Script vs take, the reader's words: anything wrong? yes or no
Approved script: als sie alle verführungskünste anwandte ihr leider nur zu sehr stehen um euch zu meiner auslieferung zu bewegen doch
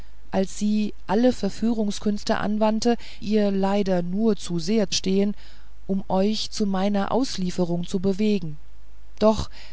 no